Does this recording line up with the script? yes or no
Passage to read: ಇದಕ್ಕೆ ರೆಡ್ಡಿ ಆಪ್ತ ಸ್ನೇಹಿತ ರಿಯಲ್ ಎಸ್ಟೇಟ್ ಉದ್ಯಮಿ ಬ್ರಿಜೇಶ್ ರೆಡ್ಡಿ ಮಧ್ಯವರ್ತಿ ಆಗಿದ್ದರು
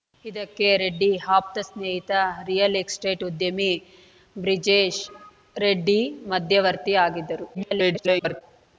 no